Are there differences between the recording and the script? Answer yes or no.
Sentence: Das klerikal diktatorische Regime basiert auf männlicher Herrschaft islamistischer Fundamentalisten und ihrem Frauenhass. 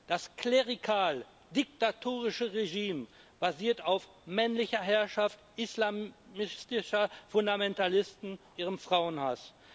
yes